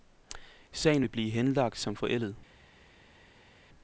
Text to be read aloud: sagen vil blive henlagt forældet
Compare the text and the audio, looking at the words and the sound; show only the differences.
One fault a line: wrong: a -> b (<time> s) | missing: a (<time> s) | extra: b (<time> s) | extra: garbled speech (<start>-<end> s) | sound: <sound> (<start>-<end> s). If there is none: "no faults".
extra: som (1.8 s)